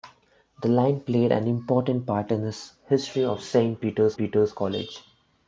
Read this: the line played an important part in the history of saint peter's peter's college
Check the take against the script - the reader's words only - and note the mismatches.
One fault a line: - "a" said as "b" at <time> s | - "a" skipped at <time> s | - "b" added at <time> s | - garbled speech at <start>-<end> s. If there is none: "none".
none